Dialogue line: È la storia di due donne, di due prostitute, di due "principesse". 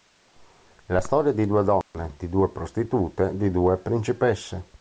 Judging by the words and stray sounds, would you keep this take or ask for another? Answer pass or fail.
fail